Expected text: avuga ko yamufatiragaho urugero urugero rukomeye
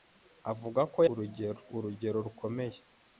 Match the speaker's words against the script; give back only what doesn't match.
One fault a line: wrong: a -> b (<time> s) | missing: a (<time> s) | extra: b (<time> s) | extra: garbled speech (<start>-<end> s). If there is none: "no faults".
missing: yamufatiragaho (1.0 s)